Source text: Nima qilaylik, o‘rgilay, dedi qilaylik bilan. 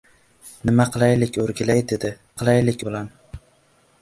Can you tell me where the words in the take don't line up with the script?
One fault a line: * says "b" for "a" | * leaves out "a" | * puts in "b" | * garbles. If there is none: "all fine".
all fine